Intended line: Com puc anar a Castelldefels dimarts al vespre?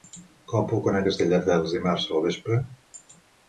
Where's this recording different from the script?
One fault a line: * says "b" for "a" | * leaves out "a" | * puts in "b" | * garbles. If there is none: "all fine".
all fine